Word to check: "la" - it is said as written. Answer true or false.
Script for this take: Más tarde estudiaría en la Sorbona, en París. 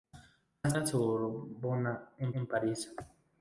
false